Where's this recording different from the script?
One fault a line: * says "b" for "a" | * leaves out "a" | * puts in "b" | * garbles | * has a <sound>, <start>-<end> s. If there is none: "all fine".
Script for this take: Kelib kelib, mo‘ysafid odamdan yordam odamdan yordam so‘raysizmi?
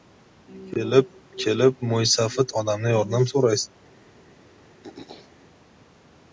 * leaves out "odamdan yordam"
* has a throat clearing, 4.8-5.3 s